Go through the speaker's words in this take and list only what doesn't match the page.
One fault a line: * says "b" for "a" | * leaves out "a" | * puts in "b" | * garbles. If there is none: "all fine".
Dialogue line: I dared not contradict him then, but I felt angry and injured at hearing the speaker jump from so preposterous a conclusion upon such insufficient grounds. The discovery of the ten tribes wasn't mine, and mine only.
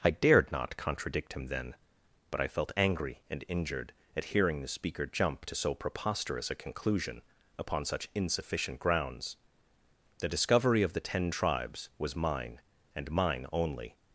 * says "to" for "from"
* says "was" for "wasn't"